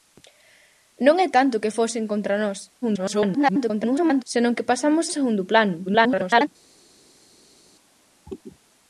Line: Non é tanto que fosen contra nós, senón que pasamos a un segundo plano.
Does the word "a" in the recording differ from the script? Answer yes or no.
yes